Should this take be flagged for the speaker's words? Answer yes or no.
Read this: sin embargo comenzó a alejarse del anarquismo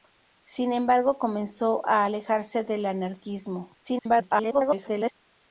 yes